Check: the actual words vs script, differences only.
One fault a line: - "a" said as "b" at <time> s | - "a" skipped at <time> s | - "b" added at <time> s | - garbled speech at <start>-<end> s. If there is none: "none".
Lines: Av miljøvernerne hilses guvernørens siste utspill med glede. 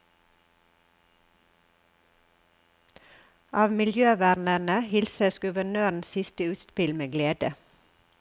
none